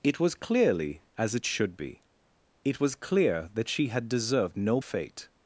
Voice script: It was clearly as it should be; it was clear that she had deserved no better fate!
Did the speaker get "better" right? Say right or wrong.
wrong